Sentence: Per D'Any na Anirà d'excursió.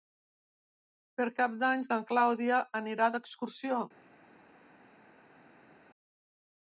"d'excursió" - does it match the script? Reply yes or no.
yes